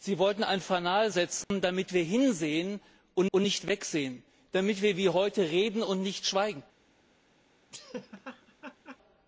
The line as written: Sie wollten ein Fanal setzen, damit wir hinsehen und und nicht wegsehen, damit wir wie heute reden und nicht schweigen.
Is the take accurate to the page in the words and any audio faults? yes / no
no